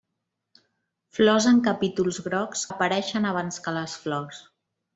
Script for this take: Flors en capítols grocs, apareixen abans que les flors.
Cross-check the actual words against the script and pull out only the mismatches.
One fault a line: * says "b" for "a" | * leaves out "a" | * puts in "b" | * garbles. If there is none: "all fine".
all fine